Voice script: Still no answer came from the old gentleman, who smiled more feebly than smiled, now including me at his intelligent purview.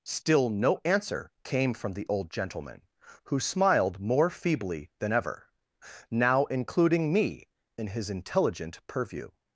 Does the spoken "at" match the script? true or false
false